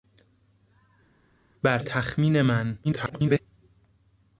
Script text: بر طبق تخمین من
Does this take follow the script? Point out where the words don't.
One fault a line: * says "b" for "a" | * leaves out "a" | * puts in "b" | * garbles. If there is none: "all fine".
* leaves out "طبق"
* garbles